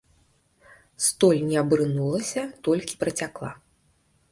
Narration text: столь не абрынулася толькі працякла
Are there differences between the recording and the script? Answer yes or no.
no